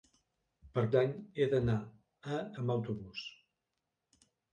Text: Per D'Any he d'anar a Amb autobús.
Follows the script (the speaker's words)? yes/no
yes